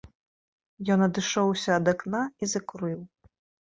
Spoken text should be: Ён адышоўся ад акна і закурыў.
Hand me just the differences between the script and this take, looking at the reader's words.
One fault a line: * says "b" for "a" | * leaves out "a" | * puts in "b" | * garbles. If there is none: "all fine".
all fine